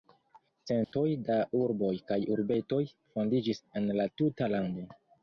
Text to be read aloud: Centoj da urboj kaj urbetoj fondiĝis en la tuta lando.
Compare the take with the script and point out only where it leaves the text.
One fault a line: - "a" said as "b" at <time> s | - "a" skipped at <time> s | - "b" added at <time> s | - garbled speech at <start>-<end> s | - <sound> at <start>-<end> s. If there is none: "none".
- dropout at 0.8-0.9 s